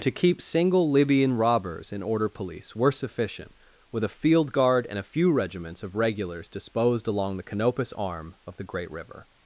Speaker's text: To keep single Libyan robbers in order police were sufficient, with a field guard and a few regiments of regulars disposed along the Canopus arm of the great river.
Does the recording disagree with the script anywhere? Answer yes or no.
no